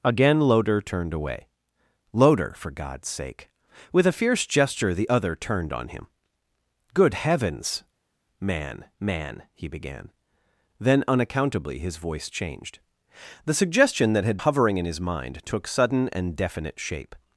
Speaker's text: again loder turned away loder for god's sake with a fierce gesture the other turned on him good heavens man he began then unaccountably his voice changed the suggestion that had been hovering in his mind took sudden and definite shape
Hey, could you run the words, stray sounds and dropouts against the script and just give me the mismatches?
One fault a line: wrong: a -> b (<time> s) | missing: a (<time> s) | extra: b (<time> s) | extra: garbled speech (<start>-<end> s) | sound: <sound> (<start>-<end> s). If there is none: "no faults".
extra: man (9.0 s)
missing: been (14.4 s)